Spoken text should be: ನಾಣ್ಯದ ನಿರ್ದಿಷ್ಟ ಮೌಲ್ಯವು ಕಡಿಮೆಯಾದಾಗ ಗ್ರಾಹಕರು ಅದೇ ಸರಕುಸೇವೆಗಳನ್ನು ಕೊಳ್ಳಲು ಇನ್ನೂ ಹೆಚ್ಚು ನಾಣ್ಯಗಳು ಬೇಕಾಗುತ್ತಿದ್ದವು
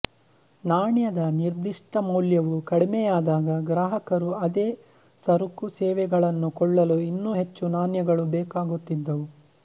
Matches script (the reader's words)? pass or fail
pass